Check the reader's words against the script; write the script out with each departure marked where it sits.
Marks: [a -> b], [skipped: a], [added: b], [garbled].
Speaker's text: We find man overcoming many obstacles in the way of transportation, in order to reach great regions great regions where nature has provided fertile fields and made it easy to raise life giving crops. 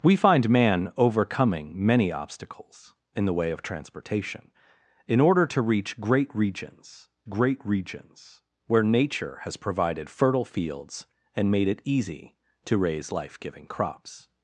We find man overcoming many obstacles in the way of transportation, in order to reach great regions great regions where nature has provided fertile fields and made it easy to raise life giving crops.